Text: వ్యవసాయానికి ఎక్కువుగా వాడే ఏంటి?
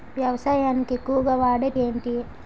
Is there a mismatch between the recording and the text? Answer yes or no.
no